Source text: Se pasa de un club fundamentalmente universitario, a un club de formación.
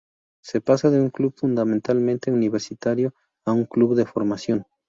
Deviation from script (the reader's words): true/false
false